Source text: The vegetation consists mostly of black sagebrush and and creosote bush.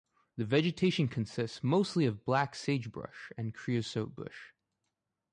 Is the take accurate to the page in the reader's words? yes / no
no